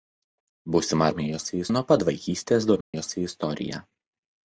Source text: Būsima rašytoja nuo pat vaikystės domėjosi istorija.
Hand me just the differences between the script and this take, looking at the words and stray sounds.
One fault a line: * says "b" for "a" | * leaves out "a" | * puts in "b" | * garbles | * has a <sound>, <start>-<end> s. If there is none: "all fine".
* says "domėjosi" for "rašytoja"
* has a dropout, 2.8-2.9 s